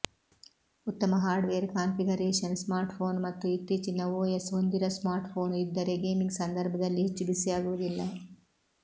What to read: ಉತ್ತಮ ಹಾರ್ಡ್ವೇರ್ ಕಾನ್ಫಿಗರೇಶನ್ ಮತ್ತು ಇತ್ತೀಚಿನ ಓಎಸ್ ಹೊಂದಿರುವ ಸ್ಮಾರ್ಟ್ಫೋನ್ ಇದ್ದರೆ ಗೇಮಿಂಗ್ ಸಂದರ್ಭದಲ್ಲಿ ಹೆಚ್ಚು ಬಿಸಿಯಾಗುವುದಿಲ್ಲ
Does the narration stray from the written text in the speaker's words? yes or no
yes